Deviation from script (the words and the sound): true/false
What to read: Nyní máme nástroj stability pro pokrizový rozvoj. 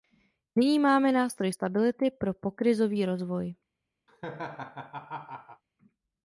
true